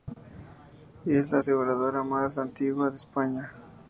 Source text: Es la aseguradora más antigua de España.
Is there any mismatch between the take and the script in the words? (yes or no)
no